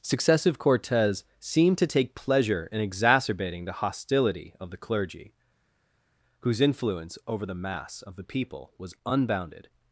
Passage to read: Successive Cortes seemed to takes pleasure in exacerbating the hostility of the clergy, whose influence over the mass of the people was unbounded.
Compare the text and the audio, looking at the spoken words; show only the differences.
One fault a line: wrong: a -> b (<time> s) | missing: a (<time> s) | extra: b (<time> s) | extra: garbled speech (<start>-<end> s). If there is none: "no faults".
wrong: takes -> take (1.8 s)